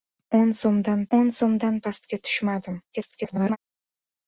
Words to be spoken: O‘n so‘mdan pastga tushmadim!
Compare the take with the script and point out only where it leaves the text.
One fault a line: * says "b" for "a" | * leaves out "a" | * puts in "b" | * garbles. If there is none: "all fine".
* puts in "o‘n so‘mdan"
* garbles